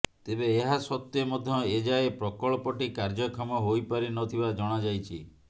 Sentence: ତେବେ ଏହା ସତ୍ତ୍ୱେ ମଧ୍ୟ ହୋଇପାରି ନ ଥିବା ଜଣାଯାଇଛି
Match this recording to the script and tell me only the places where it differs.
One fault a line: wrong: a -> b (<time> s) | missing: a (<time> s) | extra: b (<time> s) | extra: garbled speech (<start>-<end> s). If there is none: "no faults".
extra: ଏଯାଏ ପ୍ରକଳ୍ପଟି କାର୍ଯ୍ୟକ୍ଷମ (1.7 s)